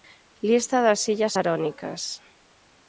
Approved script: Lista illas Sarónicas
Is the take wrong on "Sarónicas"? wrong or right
right